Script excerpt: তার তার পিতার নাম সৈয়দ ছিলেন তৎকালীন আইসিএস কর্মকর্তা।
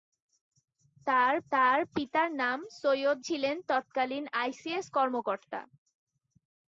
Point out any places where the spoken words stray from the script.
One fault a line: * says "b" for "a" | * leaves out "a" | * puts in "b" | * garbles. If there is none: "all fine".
all fine